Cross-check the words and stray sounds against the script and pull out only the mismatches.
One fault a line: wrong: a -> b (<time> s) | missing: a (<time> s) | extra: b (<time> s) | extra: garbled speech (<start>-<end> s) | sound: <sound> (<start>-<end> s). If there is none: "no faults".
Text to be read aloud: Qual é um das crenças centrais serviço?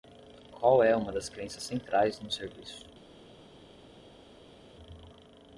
wrong: um -> uma (0.9 s)
extra: no (2.2 s)